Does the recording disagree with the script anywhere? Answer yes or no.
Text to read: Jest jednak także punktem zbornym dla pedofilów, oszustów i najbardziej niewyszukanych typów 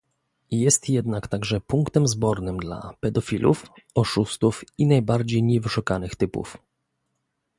no